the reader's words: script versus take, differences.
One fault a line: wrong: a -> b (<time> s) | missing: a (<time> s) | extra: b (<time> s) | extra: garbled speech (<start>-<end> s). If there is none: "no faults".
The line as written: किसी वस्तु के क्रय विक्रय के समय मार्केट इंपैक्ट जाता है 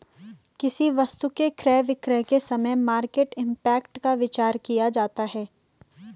extra: का विचार किया (4.0 s)